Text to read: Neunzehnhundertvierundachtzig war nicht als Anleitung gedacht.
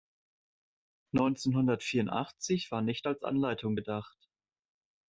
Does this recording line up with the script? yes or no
yes